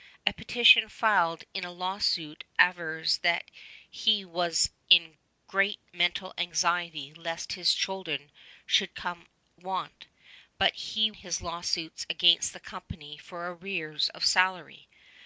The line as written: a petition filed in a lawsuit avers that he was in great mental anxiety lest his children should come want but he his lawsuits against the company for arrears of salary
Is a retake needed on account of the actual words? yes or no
no